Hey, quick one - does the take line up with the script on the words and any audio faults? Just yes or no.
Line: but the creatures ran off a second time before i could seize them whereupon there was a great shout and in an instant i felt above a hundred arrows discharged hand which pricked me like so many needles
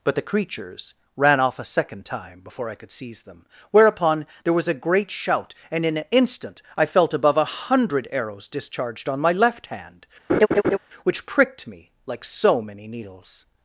no